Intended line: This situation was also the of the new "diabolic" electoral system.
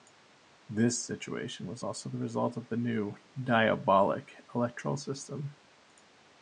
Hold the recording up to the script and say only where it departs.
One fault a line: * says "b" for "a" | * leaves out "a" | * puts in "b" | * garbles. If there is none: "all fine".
* puts in "result"